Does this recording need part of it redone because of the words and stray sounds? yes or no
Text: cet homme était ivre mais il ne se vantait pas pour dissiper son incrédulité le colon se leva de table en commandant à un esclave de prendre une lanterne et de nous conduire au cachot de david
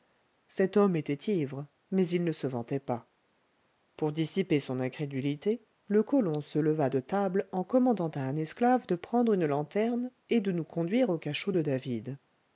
no